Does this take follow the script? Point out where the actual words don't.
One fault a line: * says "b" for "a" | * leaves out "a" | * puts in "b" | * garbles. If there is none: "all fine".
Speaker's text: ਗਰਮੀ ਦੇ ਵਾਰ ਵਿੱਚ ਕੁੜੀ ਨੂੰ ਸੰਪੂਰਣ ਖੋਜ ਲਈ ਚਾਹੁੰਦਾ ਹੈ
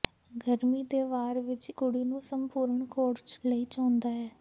all fine